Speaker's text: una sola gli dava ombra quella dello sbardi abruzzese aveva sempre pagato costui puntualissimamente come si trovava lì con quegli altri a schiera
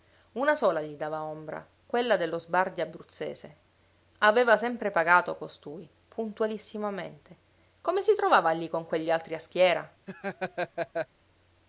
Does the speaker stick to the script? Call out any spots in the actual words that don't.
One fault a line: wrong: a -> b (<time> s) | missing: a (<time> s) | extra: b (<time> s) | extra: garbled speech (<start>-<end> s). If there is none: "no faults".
no faults